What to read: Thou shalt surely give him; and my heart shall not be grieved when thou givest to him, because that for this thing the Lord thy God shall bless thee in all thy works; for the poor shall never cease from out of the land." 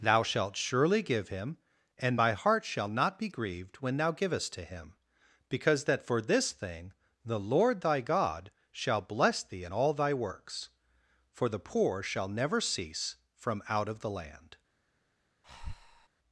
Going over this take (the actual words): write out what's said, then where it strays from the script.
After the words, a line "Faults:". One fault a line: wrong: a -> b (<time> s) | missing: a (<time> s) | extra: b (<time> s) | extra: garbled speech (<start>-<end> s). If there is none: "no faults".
Thou shalt surely give him; and my heart shall not be grieved when thou givest to him, because that for this thing the Lord thy God shall bless thee in all thy works; for the poor shall never cease from out of the land."
Faults:
no faults